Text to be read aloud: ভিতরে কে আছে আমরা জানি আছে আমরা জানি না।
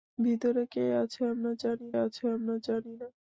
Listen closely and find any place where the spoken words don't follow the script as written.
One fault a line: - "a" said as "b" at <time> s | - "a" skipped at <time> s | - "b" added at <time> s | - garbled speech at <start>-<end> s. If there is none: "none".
none